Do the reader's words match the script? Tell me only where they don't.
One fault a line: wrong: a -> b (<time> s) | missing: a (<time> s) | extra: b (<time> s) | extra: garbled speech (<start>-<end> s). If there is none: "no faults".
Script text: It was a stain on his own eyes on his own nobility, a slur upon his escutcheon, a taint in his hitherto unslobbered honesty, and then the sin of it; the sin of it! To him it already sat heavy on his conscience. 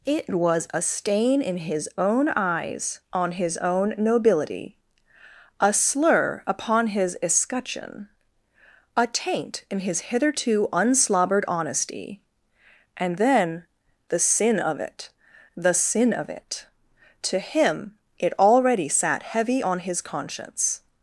wrong: on -> in (1.4 s)